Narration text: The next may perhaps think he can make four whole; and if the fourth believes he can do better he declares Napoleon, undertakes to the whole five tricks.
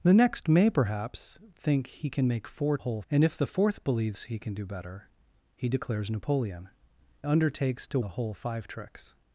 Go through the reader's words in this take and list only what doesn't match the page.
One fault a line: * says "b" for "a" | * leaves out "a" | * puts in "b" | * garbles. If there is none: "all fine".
all fine